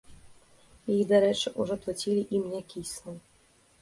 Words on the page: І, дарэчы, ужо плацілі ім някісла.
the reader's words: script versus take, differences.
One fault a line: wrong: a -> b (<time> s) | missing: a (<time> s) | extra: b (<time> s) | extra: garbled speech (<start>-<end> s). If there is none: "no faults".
no faults